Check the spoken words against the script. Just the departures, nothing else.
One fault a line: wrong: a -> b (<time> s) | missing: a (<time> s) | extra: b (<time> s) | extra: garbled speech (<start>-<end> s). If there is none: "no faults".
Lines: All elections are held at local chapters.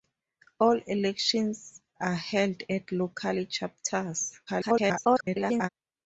extra: garbled speech (4.5-5.7 s)